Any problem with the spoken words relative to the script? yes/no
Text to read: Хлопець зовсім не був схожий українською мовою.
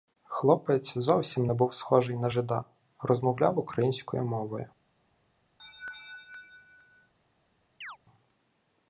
yes